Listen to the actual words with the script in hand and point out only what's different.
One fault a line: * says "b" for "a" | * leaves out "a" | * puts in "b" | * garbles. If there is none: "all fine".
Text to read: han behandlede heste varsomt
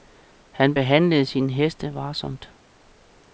* puts in "sine"